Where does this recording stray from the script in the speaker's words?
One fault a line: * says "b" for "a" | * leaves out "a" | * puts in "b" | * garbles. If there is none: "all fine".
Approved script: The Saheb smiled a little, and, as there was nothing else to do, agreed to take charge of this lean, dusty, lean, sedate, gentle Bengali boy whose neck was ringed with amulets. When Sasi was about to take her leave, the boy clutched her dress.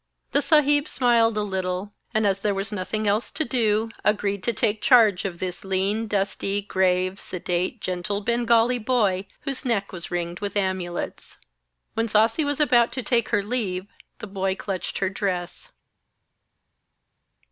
* says "grave" for "lean"